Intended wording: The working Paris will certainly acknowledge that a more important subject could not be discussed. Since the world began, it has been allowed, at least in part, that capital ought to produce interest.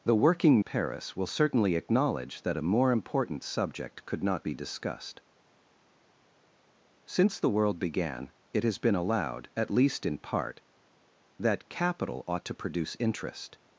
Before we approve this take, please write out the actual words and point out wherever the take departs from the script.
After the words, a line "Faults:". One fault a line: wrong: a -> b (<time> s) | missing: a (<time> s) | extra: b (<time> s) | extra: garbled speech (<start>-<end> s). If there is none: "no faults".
The working Paris will certainly acknowledge that a more important subject could not be discussed. Since the world began, it has been allowed, at least in part, that capital ought to produce interest.
Faults:
no faults